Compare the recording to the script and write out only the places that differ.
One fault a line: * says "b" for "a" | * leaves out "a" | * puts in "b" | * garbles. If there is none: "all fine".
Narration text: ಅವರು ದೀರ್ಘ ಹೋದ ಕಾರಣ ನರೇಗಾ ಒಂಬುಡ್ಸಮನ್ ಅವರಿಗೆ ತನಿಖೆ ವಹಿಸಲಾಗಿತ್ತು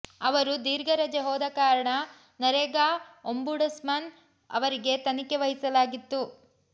* puts in "ರಜೆ"